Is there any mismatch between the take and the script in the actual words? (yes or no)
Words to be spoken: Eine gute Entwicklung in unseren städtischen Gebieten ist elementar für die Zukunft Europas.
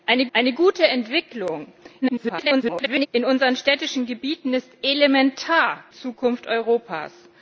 yes